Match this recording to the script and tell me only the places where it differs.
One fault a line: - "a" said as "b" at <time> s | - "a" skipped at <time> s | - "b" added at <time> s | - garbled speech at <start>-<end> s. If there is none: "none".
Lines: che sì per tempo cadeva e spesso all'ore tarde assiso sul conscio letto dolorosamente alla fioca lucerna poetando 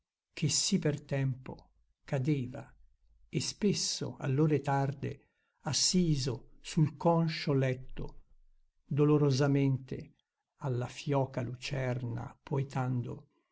none